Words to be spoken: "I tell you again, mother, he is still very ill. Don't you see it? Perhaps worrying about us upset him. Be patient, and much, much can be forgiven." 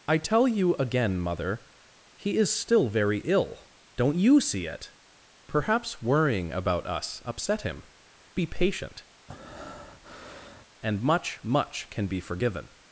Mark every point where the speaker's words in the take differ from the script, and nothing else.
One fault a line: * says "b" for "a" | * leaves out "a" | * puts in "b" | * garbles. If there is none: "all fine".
all fine